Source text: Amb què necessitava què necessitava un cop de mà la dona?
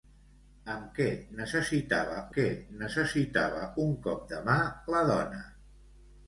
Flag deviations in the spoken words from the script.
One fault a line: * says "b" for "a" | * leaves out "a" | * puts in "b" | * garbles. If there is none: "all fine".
all fine